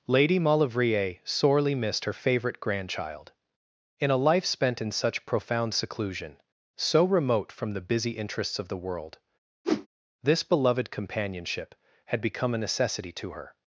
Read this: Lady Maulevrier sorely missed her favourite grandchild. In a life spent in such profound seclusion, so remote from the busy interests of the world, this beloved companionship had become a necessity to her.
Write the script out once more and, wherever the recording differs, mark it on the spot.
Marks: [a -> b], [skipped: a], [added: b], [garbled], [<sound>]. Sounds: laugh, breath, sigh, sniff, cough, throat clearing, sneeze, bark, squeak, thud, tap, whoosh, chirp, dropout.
Lady Maulevrier sorely missed her favourite grandchild. In a life spent in such profound seclusion, so remote from the busy interests of the world, [whoosh] this beloved companionship had become a necessity to her.